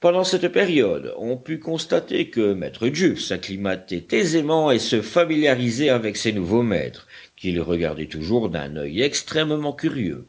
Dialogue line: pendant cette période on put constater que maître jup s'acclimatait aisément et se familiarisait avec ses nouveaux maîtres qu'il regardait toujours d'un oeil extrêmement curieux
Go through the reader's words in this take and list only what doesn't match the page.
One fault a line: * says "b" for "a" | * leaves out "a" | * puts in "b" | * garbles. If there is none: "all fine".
all fine